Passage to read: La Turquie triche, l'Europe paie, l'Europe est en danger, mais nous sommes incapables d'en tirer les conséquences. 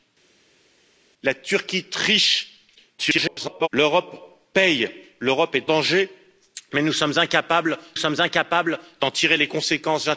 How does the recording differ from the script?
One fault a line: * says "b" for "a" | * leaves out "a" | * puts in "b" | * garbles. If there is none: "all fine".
* garbles
* leaves out "en"
* puts in "sommes incapables"